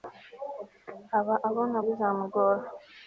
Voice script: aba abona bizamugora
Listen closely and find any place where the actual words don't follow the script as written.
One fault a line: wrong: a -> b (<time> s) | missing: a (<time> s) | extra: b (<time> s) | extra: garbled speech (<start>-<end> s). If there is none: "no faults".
no faults